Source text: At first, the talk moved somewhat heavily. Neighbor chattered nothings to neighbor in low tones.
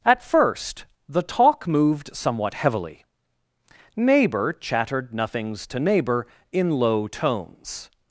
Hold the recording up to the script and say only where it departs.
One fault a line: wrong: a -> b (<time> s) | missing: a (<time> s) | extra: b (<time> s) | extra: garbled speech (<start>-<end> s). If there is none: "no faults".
no faults